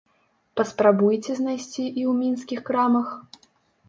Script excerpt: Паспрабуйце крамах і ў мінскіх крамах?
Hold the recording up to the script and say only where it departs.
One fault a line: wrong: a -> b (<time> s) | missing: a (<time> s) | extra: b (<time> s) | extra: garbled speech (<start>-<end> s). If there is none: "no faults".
wrong: крамах -> знайсці (1.4 s)